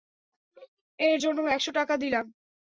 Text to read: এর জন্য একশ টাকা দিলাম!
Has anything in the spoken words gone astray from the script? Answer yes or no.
no